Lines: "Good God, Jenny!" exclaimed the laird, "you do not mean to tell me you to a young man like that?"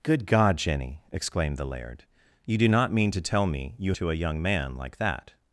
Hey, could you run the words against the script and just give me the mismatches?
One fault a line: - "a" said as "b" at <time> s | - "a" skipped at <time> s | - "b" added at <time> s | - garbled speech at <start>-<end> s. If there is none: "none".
none